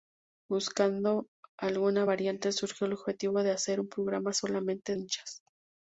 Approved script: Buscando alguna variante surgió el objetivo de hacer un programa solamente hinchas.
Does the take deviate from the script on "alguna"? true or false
false